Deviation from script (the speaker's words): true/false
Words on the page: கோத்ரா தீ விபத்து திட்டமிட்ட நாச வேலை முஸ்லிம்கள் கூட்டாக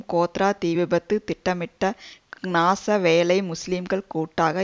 false